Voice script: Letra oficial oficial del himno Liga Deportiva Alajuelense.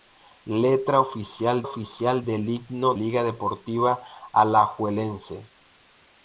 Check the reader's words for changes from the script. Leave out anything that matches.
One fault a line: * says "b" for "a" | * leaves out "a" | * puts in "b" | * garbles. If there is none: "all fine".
all fine